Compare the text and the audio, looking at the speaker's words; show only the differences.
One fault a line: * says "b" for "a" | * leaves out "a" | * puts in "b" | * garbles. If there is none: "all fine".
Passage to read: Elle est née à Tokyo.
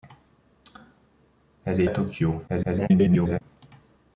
* leaves out "née"
* garbles